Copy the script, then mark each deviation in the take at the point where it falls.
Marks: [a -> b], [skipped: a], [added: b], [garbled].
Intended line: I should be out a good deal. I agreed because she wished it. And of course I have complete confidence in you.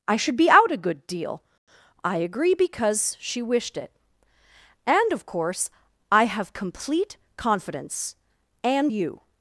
I should be out a good deal. I [agreed -> agree] because she wished it. And of course I have complete confidence [in -> and] you.